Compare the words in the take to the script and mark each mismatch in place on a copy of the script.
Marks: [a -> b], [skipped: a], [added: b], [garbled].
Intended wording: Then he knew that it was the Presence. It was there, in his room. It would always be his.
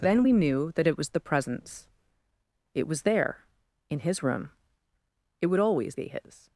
Then [he -> we] knew that it was the Presence. It was there, in his room. It would always be his.